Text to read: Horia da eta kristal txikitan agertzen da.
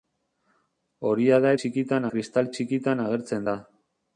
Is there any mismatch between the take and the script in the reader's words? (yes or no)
yes